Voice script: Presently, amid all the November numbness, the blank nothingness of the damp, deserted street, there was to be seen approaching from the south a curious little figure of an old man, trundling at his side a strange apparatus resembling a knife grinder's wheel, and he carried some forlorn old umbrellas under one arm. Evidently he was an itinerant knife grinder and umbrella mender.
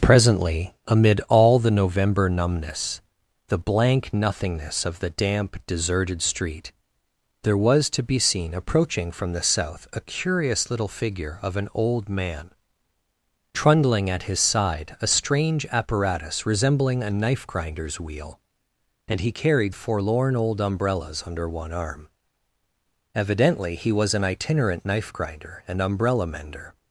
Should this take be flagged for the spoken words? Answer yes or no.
yes